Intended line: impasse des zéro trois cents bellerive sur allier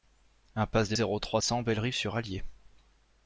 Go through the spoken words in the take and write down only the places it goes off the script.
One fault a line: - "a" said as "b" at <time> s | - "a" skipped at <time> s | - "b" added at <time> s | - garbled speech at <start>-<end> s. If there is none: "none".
none